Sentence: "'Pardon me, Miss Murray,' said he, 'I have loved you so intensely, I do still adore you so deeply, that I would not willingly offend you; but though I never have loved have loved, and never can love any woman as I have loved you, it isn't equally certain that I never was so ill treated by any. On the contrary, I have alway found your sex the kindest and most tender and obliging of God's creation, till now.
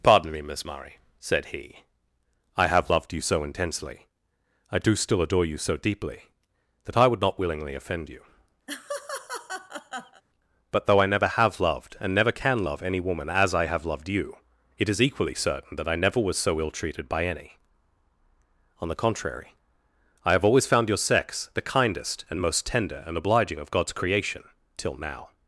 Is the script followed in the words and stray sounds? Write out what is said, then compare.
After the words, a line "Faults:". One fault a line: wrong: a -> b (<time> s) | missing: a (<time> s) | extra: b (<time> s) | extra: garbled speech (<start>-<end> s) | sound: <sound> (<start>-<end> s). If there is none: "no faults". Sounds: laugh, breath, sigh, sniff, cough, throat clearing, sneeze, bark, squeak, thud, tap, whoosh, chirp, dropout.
"'Pardon me, Miss Murray,' said he, 'I have loved you so intensely, I do still adore you so deeply, that I would not willingly offend you; but though I never have loved, and never can love any woman as I have loved you, it is equally certain that I never was so ill treated by any. On the contrary, I have always found your sex the kindest and most tender and obliging of God's creation, till now.
Faults:
sound: laugh (8.7-10.2 s)
missing: have loved (12.0 s)
wrong: isn't -> is (14.9 s)
wrong: alway -> always (20.4 s)